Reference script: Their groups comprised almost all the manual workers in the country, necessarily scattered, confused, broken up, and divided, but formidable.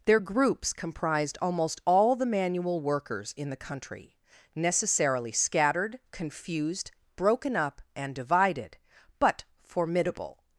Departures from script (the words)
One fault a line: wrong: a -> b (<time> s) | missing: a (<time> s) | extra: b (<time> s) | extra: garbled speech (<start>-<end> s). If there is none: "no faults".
no faults